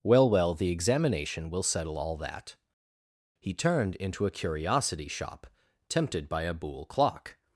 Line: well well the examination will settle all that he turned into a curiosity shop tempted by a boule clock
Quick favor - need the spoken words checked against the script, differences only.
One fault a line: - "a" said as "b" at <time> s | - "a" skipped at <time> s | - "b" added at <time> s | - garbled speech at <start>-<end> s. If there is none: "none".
none